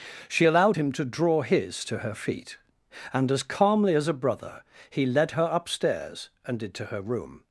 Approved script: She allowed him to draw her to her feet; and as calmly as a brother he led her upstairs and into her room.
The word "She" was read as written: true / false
true